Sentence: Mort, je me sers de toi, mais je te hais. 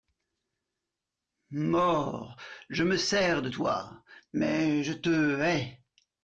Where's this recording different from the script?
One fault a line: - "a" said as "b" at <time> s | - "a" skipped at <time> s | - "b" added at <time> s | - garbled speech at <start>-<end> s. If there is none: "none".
none